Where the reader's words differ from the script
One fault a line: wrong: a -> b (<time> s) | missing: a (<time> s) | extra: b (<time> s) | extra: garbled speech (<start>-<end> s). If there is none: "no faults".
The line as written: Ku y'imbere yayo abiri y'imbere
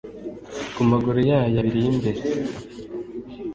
wrong: y'imbere -> maguru (0.9 s)